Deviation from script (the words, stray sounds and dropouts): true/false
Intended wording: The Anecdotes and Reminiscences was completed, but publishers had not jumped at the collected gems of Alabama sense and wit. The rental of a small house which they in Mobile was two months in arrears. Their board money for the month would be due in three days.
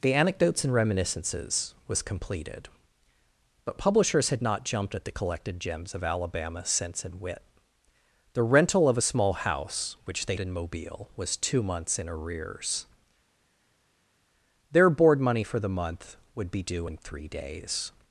false